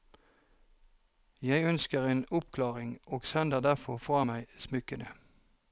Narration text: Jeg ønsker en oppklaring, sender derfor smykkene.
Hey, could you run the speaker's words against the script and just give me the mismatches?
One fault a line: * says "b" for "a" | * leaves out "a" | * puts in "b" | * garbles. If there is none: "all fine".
* puts in "og"
* puts in "fra meg"